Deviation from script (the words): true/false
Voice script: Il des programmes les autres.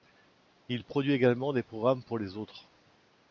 true